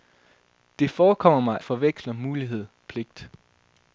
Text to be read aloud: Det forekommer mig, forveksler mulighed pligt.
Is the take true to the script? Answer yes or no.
yes